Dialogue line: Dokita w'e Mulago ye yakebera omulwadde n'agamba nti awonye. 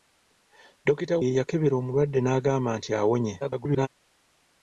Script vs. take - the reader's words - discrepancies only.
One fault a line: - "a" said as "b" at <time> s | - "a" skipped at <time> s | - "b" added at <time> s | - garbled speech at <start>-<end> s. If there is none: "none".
- "w'e Mulago" skipped at 1.1 s
- garbled speech at 3.4-3.9 s